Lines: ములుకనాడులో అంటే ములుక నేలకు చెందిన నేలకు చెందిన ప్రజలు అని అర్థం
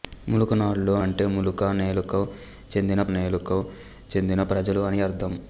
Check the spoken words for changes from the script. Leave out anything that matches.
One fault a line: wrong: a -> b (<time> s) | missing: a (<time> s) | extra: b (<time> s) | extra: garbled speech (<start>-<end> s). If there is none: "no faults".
no faults